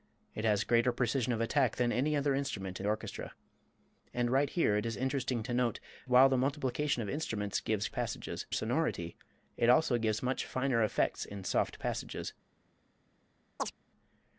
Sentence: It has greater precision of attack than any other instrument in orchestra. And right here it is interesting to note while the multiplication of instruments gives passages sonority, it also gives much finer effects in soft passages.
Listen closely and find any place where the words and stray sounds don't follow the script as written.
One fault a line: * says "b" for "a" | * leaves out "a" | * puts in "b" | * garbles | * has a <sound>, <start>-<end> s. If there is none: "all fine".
* has a chirp, 13.6-13.7 s